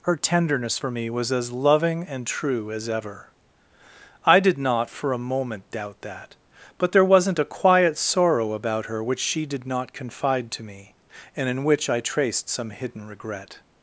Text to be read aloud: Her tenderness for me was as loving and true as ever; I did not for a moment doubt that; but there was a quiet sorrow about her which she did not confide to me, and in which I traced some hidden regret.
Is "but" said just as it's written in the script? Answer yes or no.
yes